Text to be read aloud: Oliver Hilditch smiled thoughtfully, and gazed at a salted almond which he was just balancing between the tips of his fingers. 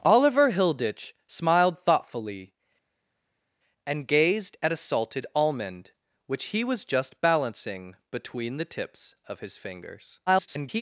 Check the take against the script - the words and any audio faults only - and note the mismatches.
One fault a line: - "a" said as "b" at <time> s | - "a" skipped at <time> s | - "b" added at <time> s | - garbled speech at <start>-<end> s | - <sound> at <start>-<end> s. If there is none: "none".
- garbled speech at 10.3-10.8 s